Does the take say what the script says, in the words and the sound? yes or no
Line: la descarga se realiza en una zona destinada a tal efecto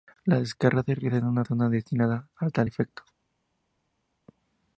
yes